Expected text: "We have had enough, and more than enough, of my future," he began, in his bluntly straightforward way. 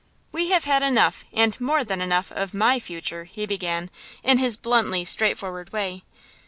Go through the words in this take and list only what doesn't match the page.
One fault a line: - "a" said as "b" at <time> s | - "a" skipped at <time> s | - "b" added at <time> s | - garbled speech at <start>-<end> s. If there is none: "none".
none